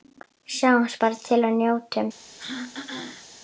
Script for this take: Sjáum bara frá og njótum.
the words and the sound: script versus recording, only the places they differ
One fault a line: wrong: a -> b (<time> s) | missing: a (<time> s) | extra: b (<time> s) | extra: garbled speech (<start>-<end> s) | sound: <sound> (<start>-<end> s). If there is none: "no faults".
wrong: frá -> til (1.3 s)
sound: throat clearing (2.4-3.3 s)